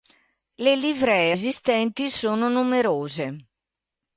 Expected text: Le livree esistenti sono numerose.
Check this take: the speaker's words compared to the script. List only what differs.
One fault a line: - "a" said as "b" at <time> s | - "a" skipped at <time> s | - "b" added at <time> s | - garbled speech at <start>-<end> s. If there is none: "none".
none